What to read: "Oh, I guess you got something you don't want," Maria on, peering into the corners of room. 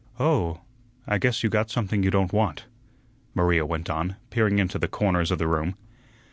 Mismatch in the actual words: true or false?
true